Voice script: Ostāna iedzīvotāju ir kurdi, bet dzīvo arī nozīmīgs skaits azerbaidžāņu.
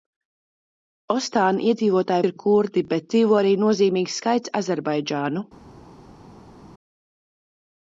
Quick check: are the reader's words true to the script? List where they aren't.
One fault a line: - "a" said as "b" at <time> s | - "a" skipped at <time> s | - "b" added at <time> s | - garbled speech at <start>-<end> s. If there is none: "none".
none